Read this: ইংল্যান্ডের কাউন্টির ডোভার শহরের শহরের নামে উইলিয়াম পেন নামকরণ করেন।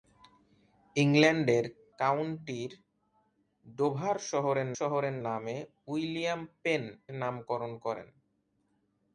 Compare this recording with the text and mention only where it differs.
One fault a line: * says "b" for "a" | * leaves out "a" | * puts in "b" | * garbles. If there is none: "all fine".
all fine